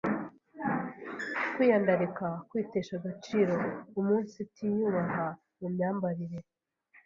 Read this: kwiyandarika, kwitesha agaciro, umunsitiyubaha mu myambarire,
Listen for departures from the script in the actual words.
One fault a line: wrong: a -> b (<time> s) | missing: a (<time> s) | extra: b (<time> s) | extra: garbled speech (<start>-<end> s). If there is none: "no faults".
no faults